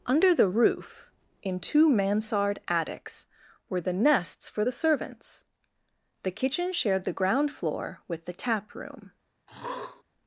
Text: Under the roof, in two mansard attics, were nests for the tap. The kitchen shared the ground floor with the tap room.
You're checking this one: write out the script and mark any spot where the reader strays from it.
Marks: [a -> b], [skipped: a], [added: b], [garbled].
Under the roof, in two mansard attics, were [added: the] nests for the [tap. -> servants] The kitchen shared the ground floor with the tap room.